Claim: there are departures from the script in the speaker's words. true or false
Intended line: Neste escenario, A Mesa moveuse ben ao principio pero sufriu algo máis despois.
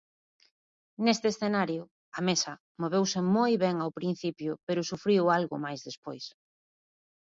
true